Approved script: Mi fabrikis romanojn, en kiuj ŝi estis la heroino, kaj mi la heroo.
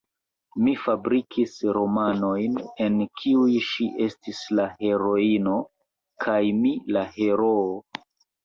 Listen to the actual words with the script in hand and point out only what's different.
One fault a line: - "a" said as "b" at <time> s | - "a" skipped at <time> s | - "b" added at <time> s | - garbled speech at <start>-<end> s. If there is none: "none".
none